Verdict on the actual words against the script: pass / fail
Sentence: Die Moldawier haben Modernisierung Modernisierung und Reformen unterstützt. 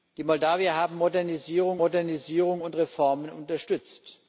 pass